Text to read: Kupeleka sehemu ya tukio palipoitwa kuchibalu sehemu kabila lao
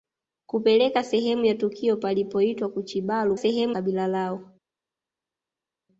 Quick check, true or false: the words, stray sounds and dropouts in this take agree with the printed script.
true